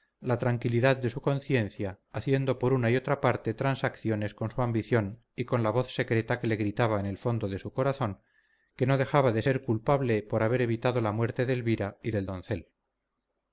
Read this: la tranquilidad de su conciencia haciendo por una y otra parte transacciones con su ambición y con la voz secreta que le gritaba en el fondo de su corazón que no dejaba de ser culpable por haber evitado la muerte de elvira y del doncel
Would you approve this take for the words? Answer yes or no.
yes